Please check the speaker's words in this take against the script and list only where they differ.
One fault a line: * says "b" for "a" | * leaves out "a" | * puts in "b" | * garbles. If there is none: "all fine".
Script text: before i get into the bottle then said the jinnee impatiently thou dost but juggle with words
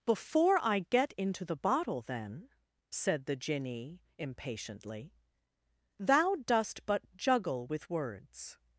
all fine